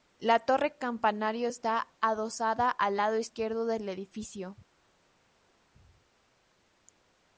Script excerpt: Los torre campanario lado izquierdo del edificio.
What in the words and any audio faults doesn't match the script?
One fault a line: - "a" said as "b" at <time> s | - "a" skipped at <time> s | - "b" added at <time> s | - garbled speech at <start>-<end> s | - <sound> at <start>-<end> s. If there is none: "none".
- "Los" said as "La" at 0.2 s
- "está adosada al" added at 1.5 s